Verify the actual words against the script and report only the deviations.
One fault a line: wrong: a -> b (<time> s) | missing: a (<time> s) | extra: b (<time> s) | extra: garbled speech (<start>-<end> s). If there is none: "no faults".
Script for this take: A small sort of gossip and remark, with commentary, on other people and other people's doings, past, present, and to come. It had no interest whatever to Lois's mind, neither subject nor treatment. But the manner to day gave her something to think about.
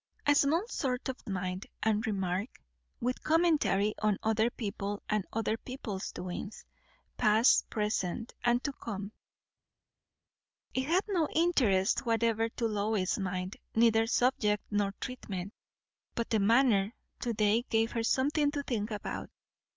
wrong: gossip -> mind (1.3 s)